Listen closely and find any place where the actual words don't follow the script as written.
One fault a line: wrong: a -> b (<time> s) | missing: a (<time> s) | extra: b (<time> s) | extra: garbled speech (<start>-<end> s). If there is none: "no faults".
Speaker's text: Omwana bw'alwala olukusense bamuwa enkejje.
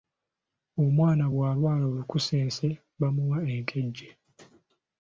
no faults